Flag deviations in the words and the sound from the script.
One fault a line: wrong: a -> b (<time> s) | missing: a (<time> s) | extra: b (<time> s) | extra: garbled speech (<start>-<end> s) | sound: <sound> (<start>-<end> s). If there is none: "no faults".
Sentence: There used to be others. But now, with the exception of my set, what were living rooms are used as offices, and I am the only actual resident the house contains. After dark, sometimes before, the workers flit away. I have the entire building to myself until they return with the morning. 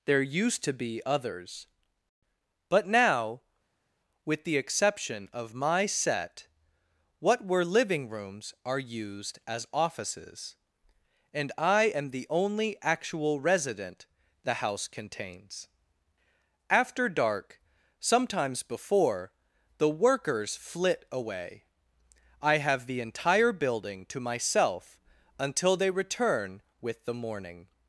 no faults